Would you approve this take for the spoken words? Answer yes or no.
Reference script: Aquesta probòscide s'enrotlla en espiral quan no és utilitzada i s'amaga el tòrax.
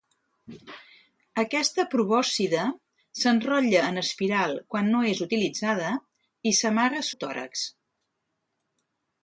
yes